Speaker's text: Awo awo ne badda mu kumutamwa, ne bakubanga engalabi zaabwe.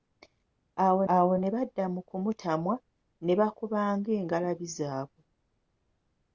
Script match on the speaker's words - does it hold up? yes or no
yes